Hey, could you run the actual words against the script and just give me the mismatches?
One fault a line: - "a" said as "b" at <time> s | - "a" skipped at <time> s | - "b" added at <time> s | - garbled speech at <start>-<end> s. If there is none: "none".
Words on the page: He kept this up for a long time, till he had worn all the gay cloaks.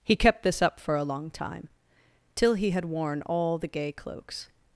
none